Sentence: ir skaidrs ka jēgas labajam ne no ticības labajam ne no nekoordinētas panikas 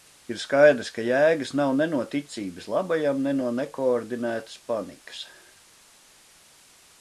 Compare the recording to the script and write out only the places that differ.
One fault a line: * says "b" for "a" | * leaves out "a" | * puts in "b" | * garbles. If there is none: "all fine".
* says "nav" for "labajam"